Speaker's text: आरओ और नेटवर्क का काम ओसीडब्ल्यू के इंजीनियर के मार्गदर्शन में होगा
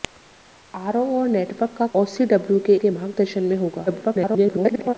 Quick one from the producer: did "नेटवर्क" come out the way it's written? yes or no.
yes